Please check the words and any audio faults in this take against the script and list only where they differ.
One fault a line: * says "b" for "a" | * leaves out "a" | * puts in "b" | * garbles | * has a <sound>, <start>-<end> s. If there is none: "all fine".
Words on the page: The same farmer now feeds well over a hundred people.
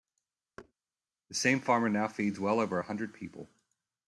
* has a thud, 0.6-0.7 s